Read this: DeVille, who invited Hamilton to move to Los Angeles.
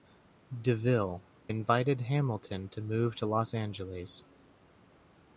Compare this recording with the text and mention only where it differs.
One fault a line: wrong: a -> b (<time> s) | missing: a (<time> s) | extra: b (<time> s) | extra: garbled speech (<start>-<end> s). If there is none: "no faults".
missing: who (1.2 s)